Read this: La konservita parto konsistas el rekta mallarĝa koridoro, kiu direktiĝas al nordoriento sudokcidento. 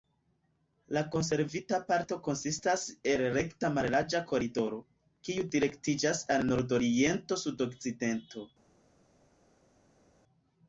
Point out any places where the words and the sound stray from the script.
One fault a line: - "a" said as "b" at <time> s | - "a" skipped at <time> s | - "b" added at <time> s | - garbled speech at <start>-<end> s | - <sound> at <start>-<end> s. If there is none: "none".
none